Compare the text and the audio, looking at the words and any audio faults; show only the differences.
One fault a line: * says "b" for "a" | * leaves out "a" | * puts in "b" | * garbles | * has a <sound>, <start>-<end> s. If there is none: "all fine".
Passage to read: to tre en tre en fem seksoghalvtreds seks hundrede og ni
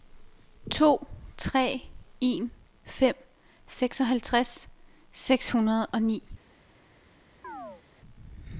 * leaves out "tre en"
* has a chirp, 7.4-7.8 s